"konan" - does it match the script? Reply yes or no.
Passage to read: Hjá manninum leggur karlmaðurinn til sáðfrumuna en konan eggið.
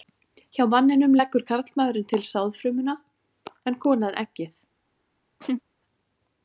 yes